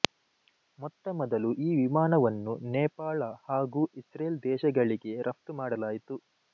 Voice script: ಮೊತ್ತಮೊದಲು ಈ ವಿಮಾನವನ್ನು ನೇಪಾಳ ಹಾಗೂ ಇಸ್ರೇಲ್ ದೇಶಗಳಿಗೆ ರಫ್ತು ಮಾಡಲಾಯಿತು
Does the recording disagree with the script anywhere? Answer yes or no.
no